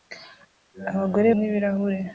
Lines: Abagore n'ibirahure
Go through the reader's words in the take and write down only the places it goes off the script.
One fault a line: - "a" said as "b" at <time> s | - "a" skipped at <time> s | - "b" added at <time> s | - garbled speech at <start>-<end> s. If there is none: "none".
none